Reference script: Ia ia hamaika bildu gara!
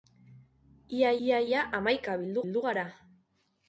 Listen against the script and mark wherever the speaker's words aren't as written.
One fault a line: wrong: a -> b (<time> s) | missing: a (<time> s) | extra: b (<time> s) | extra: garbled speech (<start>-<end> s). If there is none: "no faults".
extra: ia (1.5 s)
extra: bildu (2.4 s)